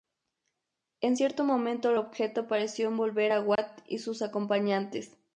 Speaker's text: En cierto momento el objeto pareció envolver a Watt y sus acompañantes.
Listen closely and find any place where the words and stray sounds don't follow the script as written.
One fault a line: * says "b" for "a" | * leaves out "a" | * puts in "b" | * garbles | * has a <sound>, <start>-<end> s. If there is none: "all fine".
* has a dropout, 3.6-3.6 s